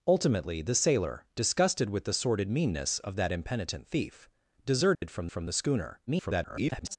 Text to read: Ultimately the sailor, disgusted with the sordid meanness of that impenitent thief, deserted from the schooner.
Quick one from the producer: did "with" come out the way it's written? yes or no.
yes